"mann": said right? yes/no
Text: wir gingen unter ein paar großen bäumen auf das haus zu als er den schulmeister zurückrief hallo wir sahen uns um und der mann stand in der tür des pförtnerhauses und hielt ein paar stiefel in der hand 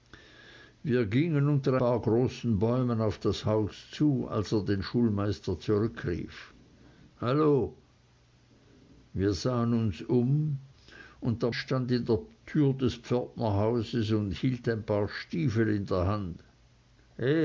no